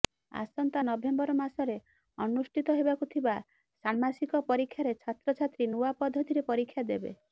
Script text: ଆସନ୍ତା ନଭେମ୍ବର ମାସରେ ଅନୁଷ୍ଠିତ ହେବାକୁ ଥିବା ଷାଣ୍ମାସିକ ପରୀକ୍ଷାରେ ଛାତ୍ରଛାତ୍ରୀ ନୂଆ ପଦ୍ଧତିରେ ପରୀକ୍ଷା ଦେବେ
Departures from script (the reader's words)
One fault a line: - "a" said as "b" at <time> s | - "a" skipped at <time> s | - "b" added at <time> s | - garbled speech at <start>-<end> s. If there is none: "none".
none